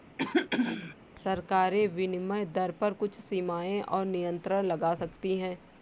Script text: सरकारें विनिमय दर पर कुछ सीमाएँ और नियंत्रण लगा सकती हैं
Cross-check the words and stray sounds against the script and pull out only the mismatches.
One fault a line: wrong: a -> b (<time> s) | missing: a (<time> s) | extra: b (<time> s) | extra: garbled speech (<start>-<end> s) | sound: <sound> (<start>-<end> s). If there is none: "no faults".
sound: throat clearing (0.2-1.0 s)